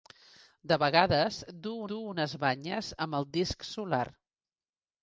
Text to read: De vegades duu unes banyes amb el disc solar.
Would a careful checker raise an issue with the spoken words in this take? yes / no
yes